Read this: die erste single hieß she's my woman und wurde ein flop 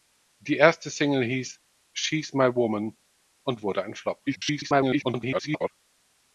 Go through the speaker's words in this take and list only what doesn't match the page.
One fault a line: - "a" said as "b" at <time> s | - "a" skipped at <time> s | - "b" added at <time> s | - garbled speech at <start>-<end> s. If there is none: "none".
- garbled speech at 4.3-5.7 s